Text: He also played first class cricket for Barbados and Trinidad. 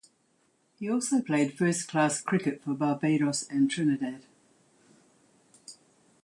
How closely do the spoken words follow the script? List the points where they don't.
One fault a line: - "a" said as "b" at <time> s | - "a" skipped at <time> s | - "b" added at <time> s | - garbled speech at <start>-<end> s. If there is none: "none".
none